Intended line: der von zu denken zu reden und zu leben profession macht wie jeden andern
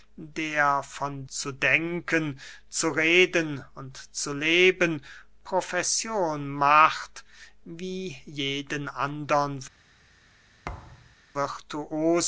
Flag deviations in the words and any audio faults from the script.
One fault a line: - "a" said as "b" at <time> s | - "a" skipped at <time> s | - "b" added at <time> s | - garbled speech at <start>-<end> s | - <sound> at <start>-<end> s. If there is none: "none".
- thud at 10.6-11.2 s